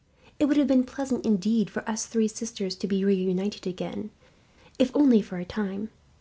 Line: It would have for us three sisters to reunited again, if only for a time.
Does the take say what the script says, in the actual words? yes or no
no